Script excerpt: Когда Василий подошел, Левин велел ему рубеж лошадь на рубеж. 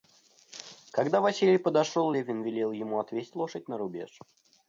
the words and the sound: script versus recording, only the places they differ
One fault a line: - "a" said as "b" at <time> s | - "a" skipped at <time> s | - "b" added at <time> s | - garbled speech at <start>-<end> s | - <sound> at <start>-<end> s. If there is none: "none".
- "рубеж" said as "отвесть" at 3.0 s